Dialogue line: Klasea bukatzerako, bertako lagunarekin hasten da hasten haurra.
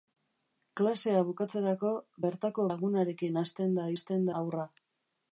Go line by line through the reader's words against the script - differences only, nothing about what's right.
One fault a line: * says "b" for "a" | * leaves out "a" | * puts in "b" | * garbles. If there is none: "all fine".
all fine